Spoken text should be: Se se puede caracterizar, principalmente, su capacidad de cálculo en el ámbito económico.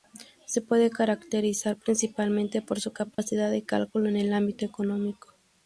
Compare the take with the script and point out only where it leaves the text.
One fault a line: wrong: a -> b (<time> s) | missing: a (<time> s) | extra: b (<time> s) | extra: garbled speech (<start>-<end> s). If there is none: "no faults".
missing: se (0.6 s)
extra: por (2.6 s)